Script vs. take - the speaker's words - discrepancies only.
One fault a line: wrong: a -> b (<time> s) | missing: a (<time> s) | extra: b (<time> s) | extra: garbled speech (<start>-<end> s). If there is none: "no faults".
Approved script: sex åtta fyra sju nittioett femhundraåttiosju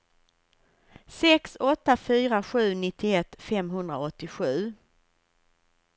no faults